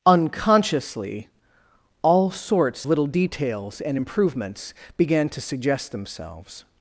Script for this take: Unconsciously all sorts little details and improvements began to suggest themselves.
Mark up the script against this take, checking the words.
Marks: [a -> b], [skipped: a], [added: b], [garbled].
Unconsciously all sorts little details and improvements began to suggest themselves.